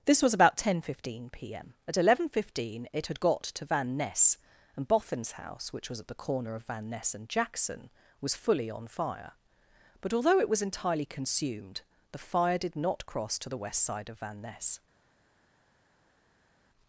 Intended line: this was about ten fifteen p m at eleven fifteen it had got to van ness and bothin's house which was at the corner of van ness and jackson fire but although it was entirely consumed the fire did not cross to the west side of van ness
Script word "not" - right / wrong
right